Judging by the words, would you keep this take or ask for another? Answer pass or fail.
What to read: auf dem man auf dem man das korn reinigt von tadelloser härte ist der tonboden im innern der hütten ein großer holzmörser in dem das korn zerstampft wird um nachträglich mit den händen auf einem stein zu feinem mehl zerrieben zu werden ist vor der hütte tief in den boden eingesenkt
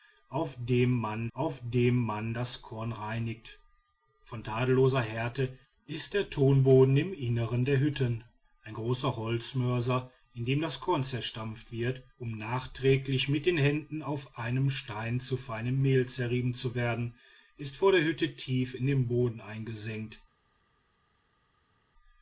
pass